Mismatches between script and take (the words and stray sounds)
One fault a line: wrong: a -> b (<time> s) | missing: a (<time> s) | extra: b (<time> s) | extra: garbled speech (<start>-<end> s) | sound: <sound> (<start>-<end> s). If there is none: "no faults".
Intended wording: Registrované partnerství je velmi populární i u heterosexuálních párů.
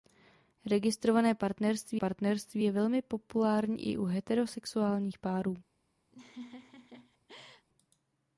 extra: partnerství (1.9 s)
sound: laugh (6.1-7.7 s)